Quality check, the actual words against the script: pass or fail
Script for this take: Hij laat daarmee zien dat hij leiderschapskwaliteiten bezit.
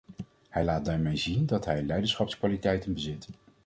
pass